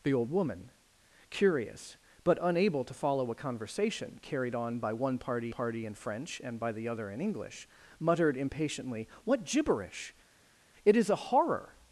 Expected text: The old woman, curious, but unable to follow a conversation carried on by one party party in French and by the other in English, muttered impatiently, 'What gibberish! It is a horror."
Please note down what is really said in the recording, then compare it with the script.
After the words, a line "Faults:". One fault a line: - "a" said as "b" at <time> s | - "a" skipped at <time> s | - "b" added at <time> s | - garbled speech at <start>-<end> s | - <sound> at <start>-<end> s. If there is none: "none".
The old woman, curious, but unable to follow a conversation carried on by one party party in French and by the other in English, muttered impatiently, 'What gibberish! It is a horror."
Faults:
none